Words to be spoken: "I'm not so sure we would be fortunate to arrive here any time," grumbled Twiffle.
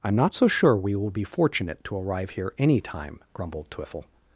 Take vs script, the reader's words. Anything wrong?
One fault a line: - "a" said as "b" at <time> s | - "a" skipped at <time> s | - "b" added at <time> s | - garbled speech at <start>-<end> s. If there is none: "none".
- "would" said as "will" at 0.9 s